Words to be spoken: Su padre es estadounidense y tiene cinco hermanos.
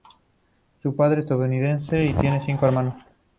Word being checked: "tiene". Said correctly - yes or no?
yes